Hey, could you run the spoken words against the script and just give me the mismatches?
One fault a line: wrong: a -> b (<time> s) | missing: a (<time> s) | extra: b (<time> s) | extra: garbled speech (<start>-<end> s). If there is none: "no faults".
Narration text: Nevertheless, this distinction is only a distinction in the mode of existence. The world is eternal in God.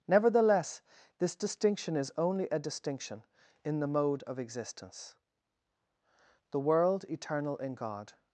missing: is (7.0 s)